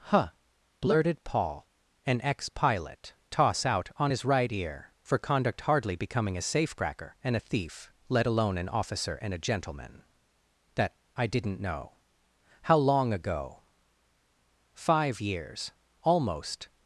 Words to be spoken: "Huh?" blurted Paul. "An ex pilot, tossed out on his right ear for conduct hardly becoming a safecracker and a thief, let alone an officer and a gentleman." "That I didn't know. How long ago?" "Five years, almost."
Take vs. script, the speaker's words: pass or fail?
fail